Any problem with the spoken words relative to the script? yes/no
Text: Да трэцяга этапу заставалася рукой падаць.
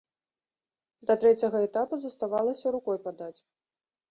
no